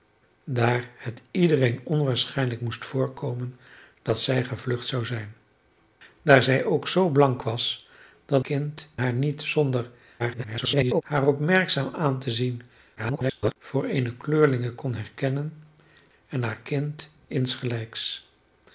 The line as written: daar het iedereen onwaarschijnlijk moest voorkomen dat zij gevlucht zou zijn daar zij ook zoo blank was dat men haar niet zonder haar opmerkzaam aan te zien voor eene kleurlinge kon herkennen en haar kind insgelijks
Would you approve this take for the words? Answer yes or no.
no